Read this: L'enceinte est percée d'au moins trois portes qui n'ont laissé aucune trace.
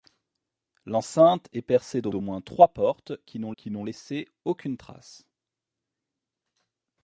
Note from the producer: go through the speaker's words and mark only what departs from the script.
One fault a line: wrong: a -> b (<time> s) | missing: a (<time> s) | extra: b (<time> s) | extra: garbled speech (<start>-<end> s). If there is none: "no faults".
extra: d'au (2.1 s)
extra: qui n'ont (3.6 s)